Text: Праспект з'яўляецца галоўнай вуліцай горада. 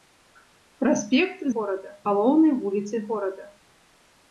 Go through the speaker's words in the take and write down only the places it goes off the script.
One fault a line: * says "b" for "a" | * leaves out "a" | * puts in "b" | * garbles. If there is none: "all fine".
* says "горада" for "з'яўляецца"